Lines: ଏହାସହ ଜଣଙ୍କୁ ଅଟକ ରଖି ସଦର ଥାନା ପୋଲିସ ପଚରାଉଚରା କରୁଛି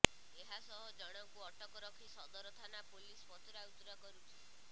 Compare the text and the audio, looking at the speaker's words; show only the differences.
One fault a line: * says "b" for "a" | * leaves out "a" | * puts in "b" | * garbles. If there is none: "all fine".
all fine